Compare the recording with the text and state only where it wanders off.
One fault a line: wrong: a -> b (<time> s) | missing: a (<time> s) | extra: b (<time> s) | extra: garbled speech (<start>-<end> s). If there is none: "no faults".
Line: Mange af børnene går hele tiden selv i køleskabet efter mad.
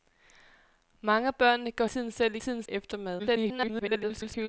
missing: hele (1.9 s)
wrong: køleskabet -> tiden (2.4 s)
extra: garbled speech (3.2-4.5 s)